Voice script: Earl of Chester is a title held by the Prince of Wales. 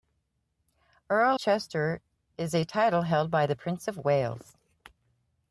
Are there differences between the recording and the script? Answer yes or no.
yes